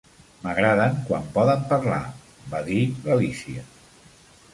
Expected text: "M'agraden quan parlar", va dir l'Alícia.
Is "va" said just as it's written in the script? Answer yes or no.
yes